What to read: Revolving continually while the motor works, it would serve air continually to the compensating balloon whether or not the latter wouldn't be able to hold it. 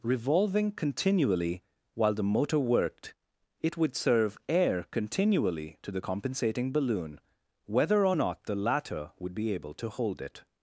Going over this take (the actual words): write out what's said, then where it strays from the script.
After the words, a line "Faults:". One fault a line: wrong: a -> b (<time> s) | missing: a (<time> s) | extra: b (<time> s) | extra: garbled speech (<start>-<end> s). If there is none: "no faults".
Revolving continually while the motor worked, it would serve air continually to the compensating balloon whether or not the latter would be able to hold it.
Faults:
wrong: works -> worked (2.6 s)
wrong: wouldn't -> would (9.2 s)